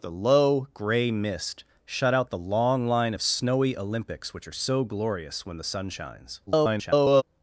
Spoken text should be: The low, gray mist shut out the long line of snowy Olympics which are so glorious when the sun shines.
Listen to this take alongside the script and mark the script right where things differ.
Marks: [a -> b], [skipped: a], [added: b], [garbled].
The low, gray mist shut out the long line of snowy Olympics which are so glorious when the sun shines. [garbled]